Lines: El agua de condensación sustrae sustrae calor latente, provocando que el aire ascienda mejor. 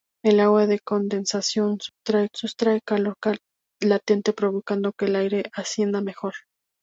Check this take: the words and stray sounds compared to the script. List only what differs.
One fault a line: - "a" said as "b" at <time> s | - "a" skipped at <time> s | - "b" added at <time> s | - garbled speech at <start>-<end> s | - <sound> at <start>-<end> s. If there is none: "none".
- dropout at 1.9-2.0 s